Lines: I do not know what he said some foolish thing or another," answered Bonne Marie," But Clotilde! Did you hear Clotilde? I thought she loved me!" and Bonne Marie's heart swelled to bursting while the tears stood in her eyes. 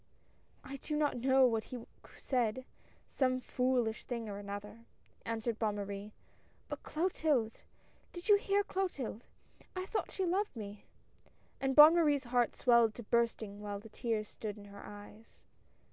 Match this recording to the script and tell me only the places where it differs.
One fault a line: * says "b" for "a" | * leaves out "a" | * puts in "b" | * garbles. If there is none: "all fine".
all fine